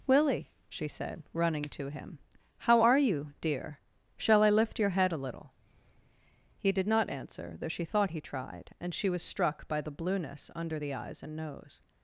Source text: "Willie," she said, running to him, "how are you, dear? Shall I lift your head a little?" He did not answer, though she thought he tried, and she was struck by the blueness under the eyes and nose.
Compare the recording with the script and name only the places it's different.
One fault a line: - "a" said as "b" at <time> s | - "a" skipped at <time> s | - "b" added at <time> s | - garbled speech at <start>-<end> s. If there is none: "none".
none